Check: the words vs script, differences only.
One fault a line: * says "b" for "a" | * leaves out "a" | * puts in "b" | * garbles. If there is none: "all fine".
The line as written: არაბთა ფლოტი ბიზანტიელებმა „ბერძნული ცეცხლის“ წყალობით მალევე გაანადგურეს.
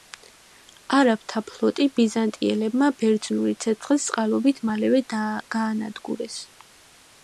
all fine